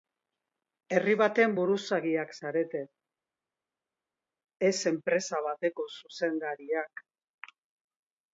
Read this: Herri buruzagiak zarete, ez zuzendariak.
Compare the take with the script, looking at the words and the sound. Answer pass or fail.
fail